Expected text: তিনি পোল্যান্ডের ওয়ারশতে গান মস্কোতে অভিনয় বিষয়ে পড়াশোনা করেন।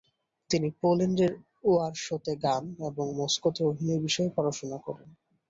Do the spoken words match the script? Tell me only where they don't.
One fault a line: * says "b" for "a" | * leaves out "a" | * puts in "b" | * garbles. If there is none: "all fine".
* puts in "এবং"